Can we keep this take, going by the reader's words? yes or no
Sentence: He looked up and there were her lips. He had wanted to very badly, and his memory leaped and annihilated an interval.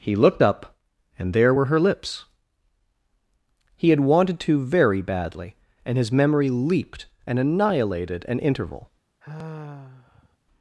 yes